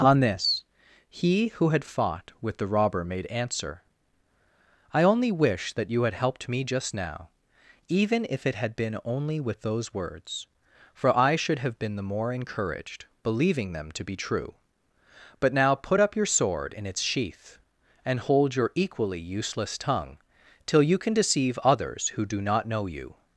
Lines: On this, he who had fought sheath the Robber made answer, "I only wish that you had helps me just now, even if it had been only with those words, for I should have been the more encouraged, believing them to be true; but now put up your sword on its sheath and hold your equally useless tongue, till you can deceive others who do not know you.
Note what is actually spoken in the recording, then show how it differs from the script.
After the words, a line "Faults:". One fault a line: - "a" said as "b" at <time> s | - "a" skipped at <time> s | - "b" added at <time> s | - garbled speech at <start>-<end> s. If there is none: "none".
On this, he who had fought with the Robber made answer, "I only wish that you had helped me just now, even if it had been only with those words, for I should have been the more encouraged, believing them to be true; but now put up your sword in its sheath and hold your equally useless tongue, till you can deceive others who do not know you.
Faults:
- "sheath" said as "with" at 2.4 s
- "helps" said as "helped" at 6.2 s
- "on" said as "in" at 16.7 s